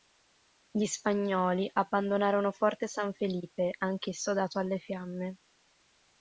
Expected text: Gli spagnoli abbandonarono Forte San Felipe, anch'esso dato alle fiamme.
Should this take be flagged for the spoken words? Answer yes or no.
no